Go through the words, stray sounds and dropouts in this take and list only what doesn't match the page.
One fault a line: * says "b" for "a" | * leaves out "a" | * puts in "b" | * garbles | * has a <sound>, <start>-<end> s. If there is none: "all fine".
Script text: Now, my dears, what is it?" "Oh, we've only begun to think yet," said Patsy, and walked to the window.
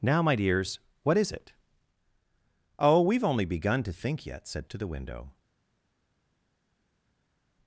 * leaves out "Patsy and walked"